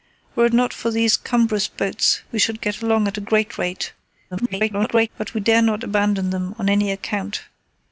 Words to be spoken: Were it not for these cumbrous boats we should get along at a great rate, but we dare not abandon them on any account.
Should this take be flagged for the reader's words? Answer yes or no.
yes